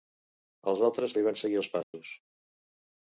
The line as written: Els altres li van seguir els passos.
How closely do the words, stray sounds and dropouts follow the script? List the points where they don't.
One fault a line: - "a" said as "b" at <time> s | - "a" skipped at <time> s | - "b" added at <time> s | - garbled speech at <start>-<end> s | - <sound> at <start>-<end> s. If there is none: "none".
- dropout at 1.8-1.9 s